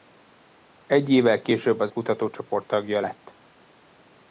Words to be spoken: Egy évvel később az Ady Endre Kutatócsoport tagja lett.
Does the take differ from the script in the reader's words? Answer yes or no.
yes